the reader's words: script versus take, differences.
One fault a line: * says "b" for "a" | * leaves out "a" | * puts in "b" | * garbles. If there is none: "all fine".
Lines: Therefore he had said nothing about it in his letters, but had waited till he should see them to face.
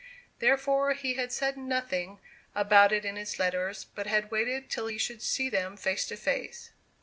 * puts in "face"